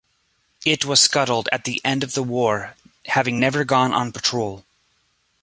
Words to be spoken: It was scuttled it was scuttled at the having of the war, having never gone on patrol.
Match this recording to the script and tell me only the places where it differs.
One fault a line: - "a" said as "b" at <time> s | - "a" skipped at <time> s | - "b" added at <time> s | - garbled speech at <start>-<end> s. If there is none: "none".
- "it was scuttled" skipped at 1.5 s
- "having" said as "end" at 1.8 s